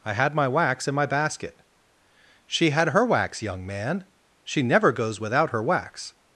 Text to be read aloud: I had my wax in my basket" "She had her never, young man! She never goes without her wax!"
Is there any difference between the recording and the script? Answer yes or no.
yes